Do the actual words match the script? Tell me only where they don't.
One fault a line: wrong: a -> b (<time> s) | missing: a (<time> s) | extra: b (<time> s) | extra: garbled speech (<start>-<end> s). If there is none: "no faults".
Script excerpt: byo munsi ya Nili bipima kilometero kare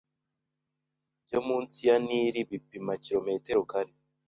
no faults